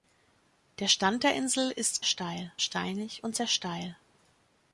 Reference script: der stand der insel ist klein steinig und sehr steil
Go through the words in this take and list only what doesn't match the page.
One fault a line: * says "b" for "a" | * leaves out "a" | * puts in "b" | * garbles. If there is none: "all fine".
* says "steil" for "klein"